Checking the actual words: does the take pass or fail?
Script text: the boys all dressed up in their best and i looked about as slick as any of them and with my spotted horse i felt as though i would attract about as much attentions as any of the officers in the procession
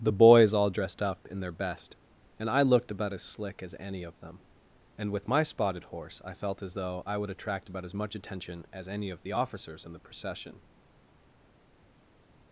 fail